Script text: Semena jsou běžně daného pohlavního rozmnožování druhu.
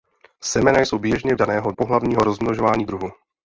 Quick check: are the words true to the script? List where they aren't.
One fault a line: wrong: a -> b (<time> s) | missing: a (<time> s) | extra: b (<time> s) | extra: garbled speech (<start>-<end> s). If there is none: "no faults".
no faults